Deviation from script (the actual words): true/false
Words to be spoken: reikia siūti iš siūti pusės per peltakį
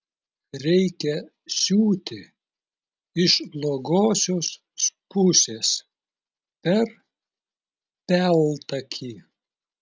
true